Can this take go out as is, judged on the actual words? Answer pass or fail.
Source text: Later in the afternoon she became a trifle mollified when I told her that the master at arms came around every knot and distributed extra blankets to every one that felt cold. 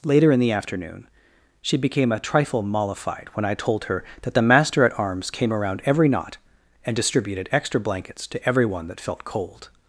pass